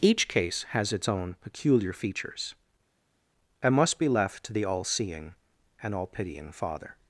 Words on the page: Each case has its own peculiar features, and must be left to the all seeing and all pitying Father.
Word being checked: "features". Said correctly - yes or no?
yes